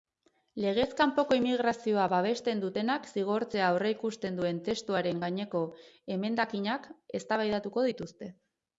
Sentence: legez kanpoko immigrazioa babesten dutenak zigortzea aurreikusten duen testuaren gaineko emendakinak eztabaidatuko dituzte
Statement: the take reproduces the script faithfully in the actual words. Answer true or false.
true